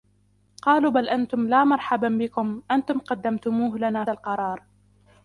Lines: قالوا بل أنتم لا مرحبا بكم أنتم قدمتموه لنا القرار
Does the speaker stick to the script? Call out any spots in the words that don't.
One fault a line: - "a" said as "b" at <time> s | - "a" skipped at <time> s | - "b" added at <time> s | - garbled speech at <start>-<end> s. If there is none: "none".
none